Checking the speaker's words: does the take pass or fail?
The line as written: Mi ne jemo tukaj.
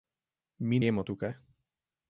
fail